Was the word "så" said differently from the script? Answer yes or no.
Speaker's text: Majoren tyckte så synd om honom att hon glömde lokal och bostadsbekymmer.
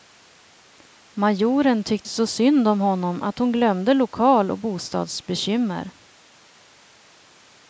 no